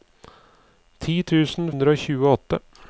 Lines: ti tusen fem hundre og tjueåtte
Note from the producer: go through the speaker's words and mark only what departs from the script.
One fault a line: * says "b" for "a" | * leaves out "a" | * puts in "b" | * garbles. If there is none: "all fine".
* leaves out "fem"